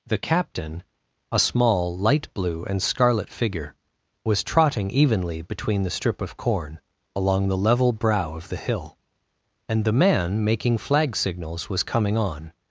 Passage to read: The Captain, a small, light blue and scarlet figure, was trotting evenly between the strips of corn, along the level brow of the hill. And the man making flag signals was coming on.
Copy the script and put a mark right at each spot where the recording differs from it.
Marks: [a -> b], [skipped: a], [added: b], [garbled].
The Captain, a small, light blue and scarlet figure, was trotting evenly between the [strips -> strip] of corn, along the level brow of the hill. And the man making flag signals was coming on.